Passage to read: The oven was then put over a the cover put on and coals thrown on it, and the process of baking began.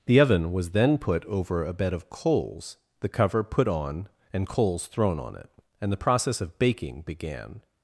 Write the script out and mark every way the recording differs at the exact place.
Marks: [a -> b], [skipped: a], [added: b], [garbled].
The oven was then put over a [added: bed of coals] the cover put on and coals thrown on it, and the process of baking began.